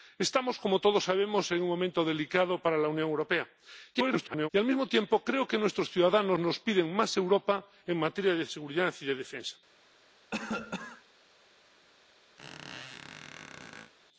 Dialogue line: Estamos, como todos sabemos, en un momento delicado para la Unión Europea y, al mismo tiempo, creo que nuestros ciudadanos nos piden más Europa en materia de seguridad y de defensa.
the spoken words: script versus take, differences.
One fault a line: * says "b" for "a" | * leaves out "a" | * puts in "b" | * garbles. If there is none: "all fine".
* garbles